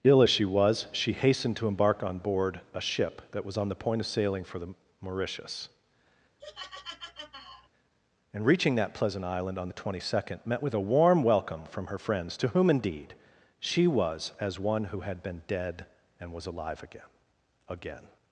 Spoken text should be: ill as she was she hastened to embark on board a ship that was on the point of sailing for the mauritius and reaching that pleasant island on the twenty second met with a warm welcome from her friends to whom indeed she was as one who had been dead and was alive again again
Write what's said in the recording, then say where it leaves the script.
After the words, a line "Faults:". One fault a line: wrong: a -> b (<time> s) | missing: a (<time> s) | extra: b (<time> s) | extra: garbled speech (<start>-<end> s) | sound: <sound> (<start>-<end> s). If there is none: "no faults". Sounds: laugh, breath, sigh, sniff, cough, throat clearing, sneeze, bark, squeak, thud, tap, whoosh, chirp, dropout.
ill as she was she hastened to embark on board a ship that was on the point of sailing for the mauritius and reaching that pleasant island on the twenty second met with a warm welcome from her friends to whom indeed she was as one who had been dead and was alive again again
Faults:
sound: laugh (6.4-7.7 s)